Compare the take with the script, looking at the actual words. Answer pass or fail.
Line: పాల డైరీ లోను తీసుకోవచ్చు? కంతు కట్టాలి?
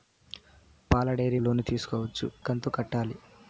pass